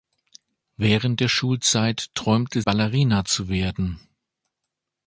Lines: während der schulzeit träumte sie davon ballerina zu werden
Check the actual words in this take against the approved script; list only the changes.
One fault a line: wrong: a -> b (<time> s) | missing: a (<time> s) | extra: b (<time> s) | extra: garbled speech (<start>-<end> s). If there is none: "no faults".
missing: sie davon (2.6 s)